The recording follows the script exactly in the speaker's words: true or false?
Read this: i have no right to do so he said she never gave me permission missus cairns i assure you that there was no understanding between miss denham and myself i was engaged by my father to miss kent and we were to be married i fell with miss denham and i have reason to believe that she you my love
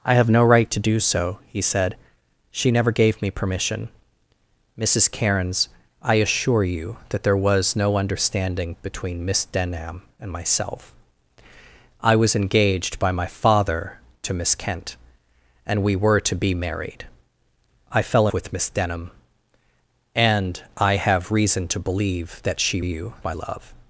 true